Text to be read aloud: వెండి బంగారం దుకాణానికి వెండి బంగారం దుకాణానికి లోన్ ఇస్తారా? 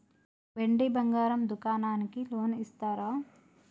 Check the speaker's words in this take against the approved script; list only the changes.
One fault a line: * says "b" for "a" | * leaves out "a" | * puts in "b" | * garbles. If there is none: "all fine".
* leaves out "వెండి బంగారం దుకాణానికి"